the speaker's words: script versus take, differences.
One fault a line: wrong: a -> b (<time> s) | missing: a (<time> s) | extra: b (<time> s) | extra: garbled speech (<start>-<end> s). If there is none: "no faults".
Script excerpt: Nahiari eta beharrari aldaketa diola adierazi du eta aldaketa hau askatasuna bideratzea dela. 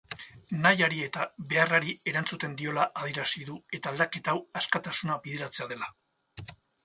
wrong: aldaketa -> erantzuten (2.1 s)